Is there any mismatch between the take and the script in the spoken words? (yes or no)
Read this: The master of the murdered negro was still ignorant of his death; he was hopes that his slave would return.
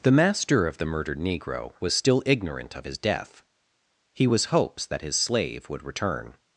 no